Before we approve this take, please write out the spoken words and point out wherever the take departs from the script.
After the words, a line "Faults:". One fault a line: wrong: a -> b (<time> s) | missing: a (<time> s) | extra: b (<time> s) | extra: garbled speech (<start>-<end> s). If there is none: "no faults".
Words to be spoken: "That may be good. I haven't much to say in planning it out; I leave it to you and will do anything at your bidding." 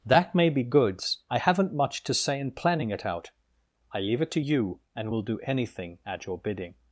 "That may be goods. I haven't much to say in planning it out; I leave it to you and will do anything at your bidding."
Faults:
wrong: good -> goods (0.6 s)